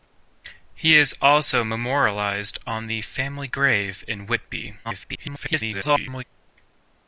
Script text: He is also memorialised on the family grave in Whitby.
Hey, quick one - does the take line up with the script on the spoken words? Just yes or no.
no